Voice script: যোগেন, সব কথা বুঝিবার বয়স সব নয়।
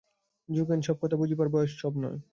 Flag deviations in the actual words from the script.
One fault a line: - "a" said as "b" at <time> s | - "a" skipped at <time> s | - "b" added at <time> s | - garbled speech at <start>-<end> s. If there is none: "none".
none